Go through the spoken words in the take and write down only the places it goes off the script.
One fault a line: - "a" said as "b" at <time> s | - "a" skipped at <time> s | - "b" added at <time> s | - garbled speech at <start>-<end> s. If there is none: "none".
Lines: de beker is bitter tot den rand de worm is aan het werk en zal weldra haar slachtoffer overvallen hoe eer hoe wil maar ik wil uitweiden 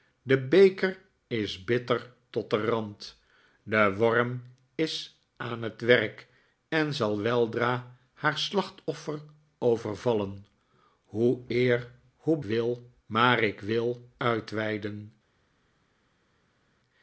none